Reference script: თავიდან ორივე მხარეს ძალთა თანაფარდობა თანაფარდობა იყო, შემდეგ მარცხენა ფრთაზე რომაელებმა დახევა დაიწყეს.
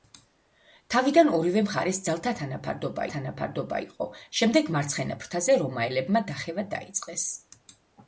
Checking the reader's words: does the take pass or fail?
pass